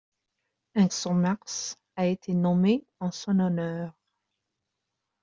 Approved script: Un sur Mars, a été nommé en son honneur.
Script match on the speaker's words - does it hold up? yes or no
yes